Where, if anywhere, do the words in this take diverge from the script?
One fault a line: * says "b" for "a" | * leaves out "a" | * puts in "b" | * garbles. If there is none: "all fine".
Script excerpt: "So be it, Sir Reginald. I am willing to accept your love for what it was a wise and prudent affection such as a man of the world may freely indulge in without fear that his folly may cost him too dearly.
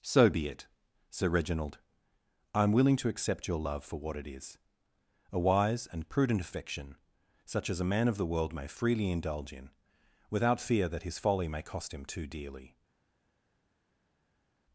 * says "is" for "was"